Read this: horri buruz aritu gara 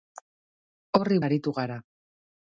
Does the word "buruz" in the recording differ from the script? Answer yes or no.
yes